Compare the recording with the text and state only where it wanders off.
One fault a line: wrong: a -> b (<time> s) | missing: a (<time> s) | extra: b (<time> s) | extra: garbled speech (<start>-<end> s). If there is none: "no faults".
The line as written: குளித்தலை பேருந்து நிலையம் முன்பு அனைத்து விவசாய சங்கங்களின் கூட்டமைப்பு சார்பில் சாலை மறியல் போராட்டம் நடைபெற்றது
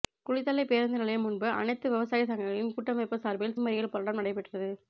missing: சாலை (3.6 s)